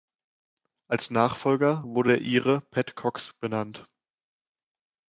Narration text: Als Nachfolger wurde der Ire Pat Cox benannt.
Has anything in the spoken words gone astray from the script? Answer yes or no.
no